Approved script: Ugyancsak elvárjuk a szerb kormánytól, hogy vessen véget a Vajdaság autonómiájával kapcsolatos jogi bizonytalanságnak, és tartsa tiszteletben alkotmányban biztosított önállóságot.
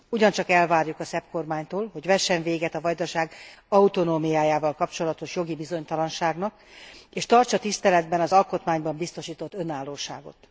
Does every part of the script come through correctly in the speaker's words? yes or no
no